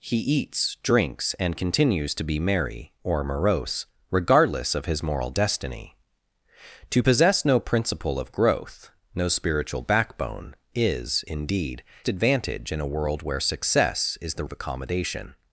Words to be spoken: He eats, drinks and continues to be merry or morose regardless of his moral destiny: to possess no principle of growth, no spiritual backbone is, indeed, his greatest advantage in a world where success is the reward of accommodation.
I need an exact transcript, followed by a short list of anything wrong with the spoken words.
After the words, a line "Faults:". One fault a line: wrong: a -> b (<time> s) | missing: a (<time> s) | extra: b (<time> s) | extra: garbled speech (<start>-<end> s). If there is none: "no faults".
He eats, drinks and continues to be merry or morose regardless of his moral destiny: to possess no principle of growth, no spiritual backbone is, indeed, advantage in a world where success is the of accommodation.
Faults:
missing: his greatest (11.8 s)
missing: reward (14.4 s)